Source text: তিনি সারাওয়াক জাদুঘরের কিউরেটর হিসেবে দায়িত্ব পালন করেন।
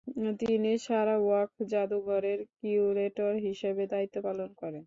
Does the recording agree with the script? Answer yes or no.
yes